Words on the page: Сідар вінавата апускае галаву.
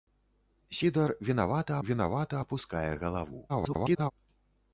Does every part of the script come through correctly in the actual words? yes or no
no